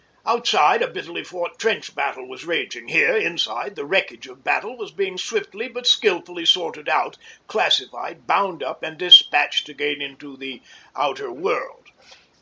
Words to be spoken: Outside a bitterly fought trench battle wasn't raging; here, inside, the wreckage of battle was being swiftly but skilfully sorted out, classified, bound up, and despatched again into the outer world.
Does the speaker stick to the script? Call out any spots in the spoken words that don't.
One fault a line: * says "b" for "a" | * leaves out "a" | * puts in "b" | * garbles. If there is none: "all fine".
* says "was" for "wasn't"